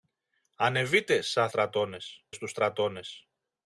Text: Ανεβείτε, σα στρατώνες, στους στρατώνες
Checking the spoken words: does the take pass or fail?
pass